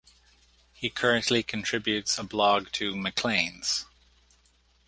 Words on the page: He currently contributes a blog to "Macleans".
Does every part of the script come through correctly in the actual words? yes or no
yes